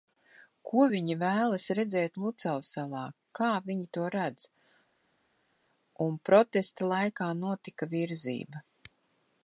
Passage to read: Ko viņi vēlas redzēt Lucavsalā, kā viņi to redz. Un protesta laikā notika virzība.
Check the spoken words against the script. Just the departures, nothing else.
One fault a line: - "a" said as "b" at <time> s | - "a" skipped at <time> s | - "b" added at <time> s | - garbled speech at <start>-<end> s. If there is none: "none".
none